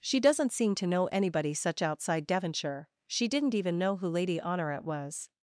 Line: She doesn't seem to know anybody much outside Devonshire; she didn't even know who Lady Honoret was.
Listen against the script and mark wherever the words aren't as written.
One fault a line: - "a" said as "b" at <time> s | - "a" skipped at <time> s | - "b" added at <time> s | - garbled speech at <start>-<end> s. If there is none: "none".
- "much" said as "such" at 1.5 s